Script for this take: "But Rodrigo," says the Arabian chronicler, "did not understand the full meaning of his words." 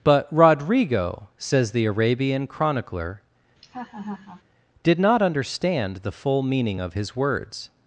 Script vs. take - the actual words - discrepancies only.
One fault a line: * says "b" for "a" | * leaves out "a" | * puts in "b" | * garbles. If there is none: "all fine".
all fine